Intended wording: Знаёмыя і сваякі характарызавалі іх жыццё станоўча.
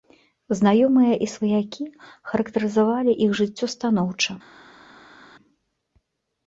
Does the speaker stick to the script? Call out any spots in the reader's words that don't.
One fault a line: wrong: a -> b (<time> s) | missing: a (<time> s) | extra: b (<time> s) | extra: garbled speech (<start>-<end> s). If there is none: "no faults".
no faults